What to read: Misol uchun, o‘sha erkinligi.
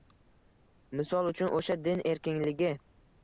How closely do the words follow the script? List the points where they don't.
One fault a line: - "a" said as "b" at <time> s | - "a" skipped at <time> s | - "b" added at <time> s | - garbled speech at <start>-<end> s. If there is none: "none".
- "din" added at 1.9 s